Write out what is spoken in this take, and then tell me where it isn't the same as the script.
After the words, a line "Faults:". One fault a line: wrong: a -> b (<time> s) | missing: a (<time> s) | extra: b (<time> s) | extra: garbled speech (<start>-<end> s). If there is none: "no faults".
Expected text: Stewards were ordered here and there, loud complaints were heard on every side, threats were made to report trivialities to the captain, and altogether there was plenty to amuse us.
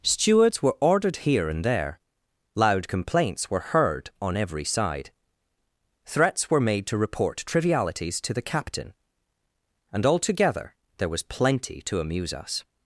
Stewards were ordered here and there, loud complaints were heard on every side, threats were made to report trivialities to the captain, and altogether there was plenty to amuse us.
Faults:
no faults